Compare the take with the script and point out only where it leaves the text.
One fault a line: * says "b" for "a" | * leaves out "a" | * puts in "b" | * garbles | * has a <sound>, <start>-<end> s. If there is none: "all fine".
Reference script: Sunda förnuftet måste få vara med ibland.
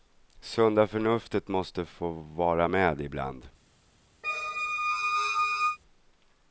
* has a squeak, 4.2-5.8 s